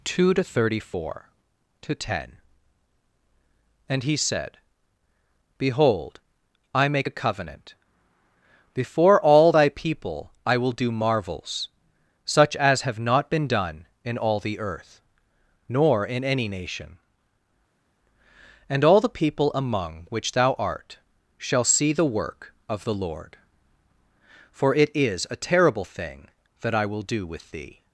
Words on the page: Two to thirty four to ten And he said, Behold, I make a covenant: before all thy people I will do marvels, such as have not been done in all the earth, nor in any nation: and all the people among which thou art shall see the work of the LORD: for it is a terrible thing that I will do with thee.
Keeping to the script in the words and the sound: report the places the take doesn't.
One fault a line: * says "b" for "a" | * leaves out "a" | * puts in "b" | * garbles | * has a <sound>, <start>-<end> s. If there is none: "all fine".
all fine